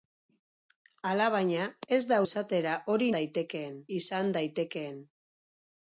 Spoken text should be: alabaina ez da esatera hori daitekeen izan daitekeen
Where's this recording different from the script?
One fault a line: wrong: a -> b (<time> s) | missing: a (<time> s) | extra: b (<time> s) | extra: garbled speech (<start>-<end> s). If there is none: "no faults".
no faults